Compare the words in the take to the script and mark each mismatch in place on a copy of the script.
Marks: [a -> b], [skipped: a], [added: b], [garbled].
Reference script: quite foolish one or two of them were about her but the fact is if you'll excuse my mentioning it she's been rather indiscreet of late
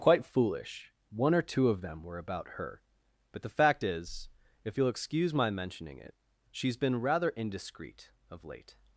quite foolish one or two of them were about her but the fact is if you'll excuse my mentioning it she's been rather indiscreet of late